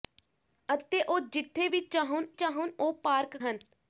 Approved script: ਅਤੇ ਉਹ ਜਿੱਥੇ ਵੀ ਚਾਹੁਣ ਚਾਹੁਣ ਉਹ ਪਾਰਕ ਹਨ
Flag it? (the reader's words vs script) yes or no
no